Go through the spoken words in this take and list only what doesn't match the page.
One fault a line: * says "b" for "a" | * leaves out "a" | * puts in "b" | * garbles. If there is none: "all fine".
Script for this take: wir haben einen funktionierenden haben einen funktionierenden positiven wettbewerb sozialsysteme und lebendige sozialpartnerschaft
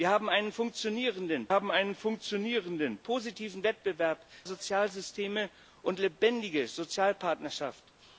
all fine